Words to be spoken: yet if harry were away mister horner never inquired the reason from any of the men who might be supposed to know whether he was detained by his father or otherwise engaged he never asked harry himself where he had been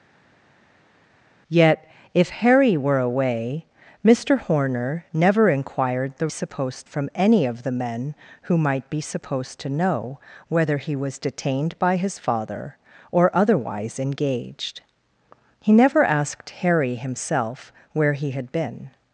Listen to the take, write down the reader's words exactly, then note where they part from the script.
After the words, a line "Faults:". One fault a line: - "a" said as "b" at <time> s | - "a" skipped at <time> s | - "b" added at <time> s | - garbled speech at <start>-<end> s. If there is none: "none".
yet if harry were away mister horner never inquired the supposed from any of the men who might be supposed to know whether he was detained by his father or otherwise engaged he never asked harry himself where he had been
Faults:
- "reason" said as "supposed" at 6.3 s